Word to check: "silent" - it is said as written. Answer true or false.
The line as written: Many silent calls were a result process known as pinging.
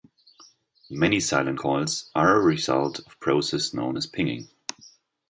true